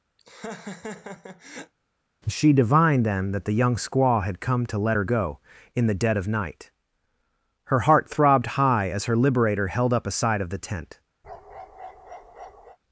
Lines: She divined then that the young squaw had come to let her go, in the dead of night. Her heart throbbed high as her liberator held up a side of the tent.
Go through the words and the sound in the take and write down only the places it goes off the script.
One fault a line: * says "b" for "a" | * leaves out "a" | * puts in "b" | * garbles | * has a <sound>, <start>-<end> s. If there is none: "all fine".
* has a laugh, 0.2-1.7 s
* has a bark, 11.2-12.8 s